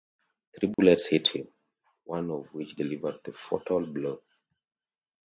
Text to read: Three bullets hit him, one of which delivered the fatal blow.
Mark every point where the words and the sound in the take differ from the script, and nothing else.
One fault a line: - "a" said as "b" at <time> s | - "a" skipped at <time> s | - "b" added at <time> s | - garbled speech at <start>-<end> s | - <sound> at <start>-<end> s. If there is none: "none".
- dropout at 0.7-0.8 s